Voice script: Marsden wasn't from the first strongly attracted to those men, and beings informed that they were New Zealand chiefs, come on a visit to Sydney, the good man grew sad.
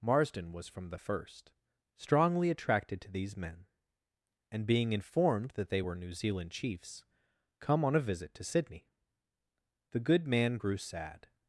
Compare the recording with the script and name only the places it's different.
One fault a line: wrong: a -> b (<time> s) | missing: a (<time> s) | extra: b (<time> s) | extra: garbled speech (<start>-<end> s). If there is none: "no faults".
wrong: wasn't -> was (0.5 s)
wrong: those -> these (3.1 s)
wrong: beings -> being (4.6 s)